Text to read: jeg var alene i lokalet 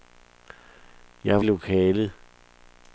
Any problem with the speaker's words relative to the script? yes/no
yes